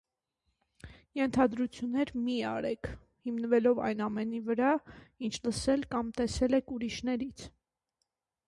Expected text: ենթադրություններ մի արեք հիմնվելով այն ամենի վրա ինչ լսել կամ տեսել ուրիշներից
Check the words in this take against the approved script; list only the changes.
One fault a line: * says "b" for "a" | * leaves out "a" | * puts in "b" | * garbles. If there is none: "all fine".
* puts in "եք"